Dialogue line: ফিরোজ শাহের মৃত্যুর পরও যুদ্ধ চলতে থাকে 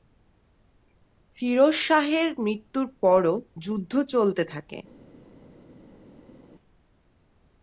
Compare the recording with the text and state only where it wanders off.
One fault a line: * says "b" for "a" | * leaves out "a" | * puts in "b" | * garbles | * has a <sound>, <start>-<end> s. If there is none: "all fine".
all fine